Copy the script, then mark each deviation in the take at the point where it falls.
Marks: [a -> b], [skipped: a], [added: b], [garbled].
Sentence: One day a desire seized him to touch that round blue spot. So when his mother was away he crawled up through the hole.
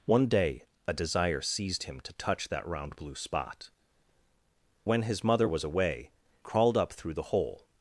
One day a desire seized him to touch that round blue spot. [skipped: So] when his mother was away [skipped: he] crawled up through the hole.